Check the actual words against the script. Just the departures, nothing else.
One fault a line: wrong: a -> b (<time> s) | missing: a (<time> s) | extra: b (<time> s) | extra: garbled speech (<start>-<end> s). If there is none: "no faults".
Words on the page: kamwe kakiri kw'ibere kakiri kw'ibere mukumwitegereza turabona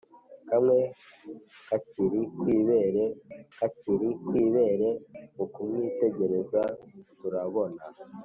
no faults